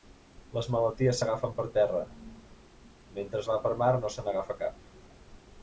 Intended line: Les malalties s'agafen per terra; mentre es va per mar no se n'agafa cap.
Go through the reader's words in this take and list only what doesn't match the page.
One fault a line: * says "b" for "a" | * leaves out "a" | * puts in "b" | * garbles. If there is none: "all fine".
all fine